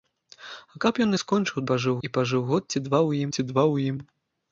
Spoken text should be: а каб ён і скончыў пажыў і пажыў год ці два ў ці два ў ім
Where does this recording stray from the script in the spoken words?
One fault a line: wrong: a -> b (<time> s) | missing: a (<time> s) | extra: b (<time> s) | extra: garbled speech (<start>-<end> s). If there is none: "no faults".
no faults